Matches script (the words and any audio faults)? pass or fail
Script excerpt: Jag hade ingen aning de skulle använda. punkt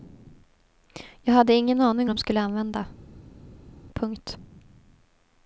pass